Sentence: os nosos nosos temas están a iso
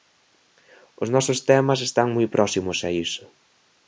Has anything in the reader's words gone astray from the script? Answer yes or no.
yes